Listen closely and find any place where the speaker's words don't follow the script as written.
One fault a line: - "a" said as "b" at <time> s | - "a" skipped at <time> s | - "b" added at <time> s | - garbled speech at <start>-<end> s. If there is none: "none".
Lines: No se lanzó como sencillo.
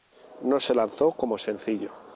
none